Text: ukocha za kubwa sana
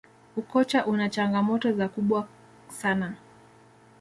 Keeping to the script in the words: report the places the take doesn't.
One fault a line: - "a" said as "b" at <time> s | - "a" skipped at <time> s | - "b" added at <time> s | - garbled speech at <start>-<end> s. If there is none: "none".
- "una changamoto" added at 0.8 s